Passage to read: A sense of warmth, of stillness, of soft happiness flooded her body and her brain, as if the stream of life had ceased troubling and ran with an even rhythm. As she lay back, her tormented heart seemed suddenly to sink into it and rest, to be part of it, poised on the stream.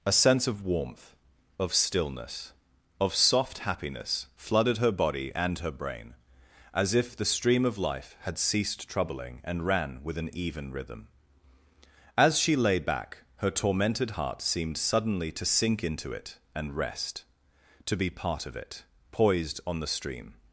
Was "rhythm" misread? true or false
false